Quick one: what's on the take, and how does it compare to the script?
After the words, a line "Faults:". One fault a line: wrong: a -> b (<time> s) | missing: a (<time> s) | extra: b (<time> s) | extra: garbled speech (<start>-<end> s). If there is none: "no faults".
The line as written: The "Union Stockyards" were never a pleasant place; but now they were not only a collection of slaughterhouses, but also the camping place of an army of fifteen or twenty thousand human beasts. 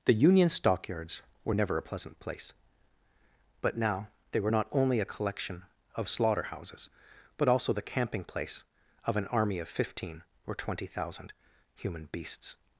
The "Union Stockyards" were never a pleasant place; but now they were not only a collection of slaughterhouses, but also the camping place of an army of fifteen or twenty thousand human beasts.
Faults:
no faults